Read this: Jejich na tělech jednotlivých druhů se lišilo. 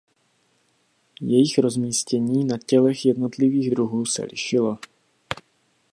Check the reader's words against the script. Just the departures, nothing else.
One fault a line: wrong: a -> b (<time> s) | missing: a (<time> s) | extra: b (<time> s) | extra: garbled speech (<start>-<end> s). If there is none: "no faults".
extra: rozmístění (1.6 s)